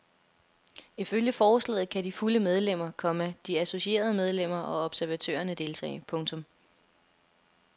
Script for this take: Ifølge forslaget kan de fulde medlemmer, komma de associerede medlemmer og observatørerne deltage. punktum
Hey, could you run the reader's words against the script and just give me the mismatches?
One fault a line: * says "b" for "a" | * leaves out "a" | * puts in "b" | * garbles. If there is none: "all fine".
all fine